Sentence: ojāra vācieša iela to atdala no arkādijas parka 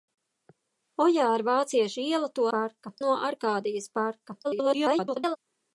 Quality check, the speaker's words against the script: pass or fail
fail